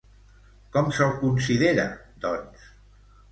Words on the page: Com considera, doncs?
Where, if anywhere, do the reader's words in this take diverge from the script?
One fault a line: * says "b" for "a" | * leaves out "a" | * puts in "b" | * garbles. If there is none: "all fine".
* puts in "se'l"